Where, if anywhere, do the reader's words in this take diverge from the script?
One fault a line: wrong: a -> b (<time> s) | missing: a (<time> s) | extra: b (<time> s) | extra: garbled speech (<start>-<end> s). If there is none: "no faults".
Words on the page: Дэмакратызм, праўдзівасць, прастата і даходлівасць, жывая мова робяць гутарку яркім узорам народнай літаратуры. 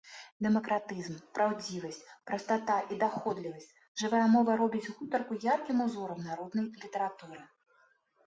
no faults